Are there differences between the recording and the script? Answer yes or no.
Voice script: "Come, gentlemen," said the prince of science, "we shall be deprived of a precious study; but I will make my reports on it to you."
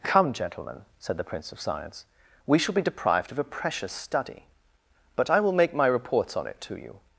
no